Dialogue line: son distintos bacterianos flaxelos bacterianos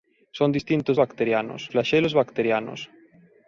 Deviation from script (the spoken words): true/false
false